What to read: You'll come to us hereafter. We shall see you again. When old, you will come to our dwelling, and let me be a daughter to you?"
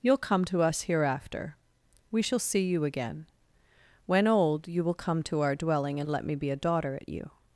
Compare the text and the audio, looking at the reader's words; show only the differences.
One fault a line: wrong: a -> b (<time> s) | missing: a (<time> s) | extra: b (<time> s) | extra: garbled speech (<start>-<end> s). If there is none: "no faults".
wrong: to -> at (7.0 s)